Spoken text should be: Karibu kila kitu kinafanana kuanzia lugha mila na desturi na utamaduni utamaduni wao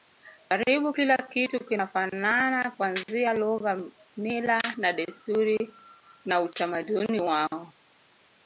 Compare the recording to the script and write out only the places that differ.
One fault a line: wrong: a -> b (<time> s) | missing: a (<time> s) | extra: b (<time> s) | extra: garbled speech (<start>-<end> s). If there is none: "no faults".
missing: utamaduni (7.2 s)